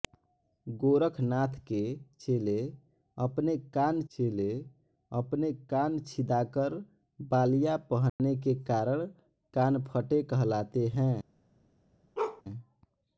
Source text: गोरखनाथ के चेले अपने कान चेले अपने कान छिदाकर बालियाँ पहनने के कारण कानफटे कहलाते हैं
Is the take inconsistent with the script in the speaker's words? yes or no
no